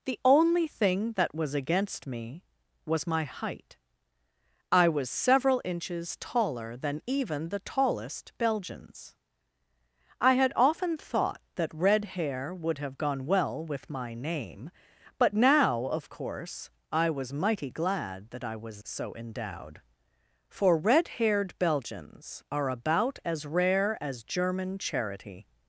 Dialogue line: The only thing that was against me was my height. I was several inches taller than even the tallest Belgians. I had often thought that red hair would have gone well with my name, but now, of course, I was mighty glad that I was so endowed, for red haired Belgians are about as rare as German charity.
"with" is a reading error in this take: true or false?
false